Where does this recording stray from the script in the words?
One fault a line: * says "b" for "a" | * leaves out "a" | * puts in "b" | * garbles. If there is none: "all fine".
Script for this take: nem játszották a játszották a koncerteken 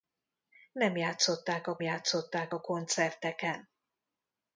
all fine